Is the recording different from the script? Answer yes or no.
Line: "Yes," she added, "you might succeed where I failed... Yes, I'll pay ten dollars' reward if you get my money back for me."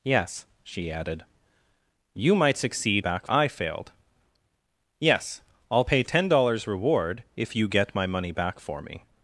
yes